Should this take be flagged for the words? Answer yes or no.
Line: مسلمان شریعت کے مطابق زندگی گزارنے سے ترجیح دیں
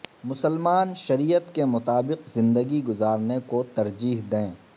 yes